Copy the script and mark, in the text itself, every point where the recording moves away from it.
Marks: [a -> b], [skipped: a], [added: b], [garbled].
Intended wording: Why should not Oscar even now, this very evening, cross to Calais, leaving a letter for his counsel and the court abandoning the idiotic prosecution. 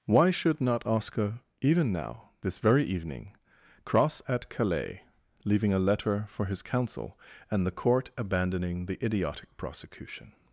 Why should not Oscar even now, this very evening, cross [to -> at] Calais, leaving a letter for his counsel and the court abandoning the idiotic prosecution.